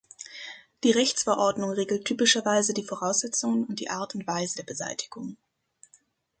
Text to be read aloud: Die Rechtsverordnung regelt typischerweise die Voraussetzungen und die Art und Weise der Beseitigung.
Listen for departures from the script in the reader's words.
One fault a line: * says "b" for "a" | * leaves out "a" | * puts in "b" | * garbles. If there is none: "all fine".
all fine